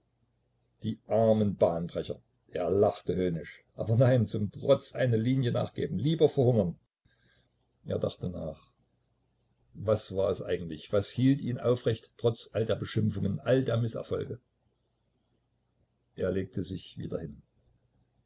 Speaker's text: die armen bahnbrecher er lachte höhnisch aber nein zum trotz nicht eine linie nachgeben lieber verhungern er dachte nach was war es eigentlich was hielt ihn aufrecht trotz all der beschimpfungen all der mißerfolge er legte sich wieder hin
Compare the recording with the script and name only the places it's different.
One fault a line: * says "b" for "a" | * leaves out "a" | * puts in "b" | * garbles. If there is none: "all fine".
* leaves out "nicht"